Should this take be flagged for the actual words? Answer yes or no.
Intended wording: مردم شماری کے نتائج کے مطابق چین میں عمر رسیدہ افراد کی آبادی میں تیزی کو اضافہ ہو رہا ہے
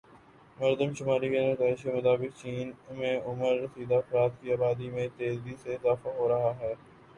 yes